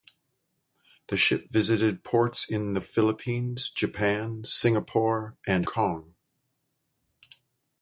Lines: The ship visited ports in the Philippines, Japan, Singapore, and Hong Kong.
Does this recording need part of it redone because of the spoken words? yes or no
yes